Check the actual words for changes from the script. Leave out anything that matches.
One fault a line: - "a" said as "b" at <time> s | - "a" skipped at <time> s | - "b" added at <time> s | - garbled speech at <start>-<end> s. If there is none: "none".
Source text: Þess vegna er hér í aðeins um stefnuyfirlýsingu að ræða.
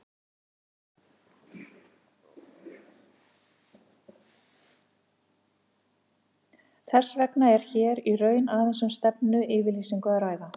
- "raun" added at 8.2 s